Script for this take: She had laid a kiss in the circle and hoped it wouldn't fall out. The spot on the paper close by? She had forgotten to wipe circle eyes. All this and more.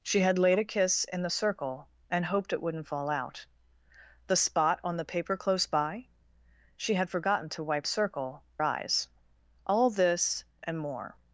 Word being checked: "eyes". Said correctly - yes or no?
yes